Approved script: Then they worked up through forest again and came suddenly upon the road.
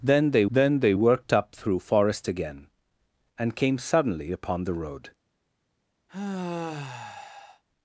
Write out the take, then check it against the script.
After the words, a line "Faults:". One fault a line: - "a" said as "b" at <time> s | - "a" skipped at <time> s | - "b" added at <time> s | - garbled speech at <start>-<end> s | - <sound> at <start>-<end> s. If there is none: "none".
Then they then they worked up through forest again and came suddenly upon the road.
Faults:
- "then they" added at 0.5 s
- sigh at 6.1-7.6 s